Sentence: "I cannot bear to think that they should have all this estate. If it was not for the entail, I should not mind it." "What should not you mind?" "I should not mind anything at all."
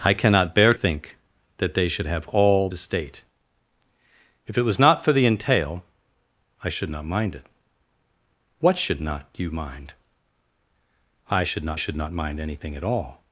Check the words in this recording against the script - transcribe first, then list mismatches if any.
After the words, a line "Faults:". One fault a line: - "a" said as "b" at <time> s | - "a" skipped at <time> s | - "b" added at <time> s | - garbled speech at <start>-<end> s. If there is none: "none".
"I cannot bear think that they should have all estate. If it was not for the entail, I should not mind it." "What should not you mind?" "I should not should not mind anything at all."
Faults:
- "to" skipped at 0.7 s
- "this" skipped at 2.7 s
- "should not" added at 11.7 s